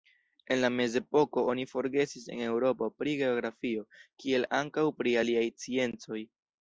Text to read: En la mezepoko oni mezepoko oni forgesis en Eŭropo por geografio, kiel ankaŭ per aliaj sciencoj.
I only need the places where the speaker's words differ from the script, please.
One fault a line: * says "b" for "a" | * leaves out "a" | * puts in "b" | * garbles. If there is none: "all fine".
* leaves out "mezepoko oni"
* says "pri" for "por"
* says "pri" for "per"